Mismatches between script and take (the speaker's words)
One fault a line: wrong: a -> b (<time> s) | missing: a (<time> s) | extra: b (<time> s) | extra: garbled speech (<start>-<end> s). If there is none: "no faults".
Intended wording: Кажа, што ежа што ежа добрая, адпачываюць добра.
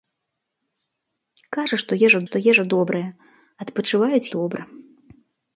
no faults